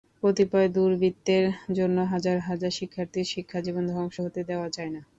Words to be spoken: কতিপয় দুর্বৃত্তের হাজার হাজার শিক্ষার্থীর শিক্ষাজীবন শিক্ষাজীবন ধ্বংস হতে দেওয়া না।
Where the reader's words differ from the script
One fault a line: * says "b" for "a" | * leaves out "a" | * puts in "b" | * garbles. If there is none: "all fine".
* puts in "জন্য"
* leaves out "শিক্ষাজীবন"
* puts in "যায়"